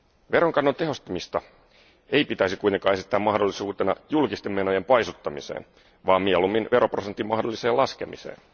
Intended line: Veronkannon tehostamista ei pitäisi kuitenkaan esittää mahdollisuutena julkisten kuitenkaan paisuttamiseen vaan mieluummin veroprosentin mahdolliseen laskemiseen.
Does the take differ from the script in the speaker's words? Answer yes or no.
yes